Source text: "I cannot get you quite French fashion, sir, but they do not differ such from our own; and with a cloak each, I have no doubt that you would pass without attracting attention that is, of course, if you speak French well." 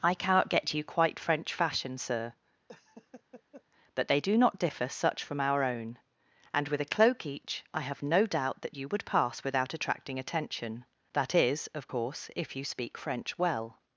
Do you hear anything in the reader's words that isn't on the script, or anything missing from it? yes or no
no